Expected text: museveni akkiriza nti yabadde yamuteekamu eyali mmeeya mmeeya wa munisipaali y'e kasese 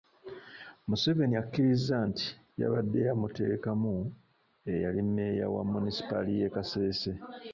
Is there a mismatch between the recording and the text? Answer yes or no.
yes